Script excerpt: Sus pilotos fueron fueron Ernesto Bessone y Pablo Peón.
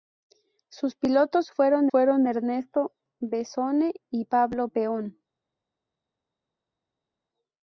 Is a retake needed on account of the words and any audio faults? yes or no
no